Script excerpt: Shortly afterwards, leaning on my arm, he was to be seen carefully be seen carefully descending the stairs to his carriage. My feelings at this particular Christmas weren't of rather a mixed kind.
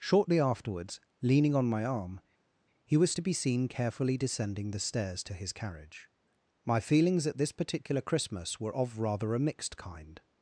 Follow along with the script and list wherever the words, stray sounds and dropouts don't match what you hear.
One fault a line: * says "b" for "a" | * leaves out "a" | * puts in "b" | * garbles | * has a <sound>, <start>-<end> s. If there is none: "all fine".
* leaves out "be seen carefully"
* says "were" for "weren't"